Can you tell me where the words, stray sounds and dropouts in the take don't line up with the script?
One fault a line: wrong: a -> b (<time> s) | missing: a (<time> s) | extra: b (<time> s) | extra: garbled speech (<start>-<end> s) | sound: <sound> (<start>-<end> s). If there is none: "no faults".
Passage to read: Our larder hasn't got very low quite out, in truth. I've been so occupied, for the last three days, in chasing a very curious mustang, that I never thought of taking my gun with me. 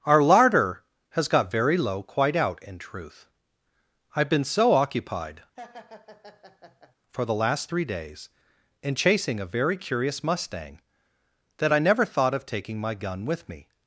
wrong: hasn't -> has (1.1 s)
sound: laugh (5.6-7.0 s)